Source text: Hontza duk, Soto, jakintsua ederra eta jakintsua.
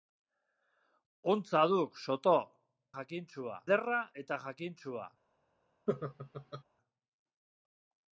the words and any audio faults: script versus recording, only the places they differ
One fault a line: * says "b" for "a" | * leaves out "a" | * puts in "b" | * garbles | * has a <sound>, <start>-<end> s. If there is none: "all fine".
* has a laugh, 5.9-6.6 s